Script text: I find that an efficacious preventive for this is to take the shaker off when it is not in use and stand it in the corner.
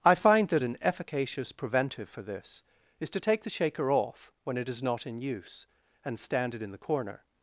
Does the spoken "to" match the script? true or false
true